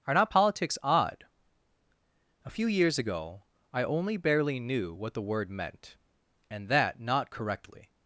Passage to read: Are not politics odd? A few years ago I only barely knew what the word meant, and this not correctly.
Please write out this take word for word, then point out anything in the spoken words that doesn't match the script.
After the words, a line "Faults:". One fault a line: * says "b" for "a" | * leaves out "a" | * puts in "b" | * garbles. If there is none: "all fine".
Are not politics odd? A few years ago I only barely knew what the word meant, and that not correctly.
Faults:
* says "that" for "this"